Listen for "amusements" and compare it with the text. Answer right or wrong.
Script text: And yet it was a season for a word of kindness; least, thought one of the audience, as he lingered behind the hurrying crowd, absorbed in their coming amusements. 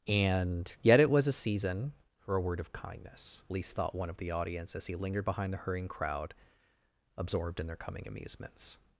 right